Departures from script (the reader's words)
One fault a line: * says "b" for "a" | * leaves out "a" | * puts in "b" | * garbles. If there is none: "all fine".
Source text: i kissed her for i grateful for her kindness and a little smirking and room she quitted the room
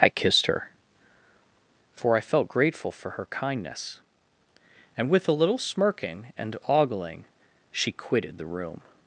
* puts in "felt"
* puts in "with"
* says "ogling" for "room"